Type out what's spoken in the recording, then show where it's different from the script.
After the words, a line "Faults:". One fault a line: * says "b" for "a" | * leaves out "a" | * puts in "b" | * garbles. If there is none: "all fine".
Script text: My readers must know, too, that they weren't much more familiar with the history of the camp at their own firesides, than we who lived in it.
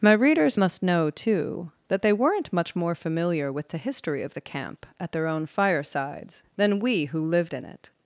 My readers must know, too, that they weren't much more familiar with the history of the camp at their own firesides, than we who lived in it.
Faults:
all fine